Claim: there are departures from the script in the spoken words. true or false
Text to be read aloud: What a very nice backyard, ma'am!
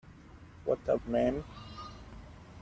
true